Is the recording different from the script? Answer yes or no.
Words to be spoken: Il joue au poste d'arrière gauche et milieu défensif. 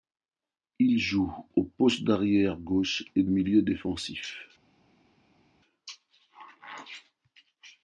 no